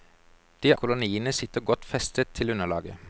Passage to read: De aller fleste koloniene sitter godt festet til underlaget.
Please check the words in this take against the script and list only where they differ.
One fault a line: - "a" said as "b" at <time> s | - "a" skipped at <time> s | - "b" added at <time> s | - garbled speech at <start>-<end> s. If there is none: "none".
- "aller fleste" skipped at 0.7 s